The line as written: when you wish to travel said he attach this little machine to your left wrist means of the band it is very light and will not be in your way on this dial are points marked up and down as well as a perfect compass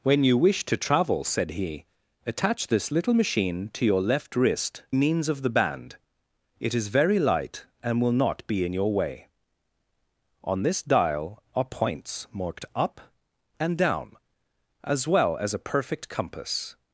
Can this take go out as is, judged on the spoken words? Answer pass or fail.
pass